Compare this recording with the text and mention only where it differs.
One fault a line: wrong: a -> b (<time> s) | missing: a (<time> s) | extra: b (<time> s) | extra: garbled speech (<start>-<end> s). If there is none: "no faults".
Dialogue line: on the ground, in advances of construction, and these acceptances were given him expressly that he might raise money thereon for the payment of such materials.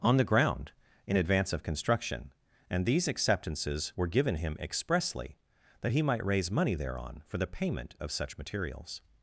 wrong: advances -> advance (1.1 s)